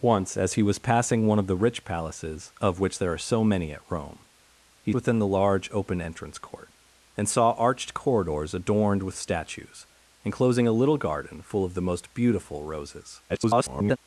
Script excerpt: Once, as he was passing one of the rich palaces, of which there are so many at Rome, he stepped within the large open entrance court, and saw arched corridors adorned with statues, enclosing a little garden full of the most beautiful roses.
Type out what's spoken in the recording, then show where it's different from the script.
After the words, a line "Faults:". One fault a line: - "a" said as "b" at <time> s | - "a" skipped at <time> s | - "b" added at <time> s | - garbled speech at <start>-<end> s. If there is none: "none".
Once, as he was passing one of the rich palaces, of which there are so many at Rome, he within the large open entrance court, and saw arched corridors adorned with statues, enclosing a little garden full of the most beautiful roses. [garbled]
Faults:
- "stepped" skipped at 4.9 s
- garbled speech at 13.3-14.0 s